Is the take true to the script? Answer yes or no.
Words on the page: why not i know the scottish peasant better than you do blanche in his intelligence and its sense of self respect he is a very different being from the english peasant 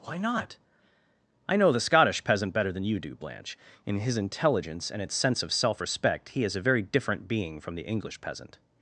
yes